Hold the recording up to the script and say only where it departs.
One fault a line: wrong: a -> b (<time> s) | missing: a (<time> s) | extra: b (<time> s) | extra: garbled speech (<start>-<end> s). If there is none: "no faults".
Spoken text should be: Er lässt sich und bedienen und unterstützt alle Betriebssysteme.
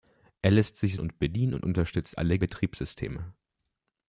no faults